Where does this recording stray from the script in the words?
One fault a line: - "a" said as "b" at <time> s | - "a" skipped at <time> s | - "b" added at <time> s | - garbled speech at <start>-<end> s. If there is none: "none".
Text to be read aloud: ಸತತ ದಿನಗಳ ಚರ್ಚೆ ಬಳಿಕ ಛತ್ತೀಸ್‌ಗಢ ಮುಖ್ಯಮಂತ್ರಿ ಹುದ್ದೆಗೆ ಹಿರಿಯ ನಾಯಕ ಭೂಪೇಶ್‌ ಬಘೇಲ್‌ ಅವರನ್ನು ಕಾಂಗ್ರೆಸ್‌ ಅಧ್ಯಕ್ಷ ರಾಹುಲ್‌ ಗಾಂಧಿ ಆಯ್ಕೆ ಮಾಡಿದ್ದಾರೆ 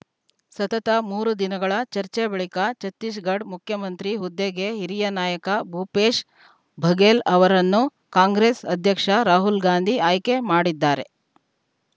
- "ಮೂರು" added at 1.1 s